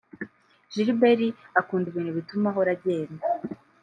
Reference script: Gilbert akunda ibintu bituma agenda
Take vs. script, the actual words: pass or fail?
fail